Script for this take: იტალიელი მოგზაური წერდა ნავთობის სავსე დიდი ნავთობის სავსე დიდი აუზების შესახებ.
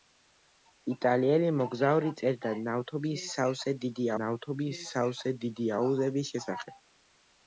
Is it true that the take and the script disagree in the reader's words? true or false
false